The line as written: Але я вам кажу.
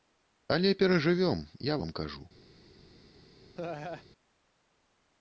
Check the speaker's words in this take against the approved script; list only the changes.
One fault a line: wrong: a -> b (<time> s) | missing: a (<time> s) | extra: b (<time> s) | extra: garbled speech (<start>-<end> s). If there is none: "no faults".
extra: перажывём (0.8 s)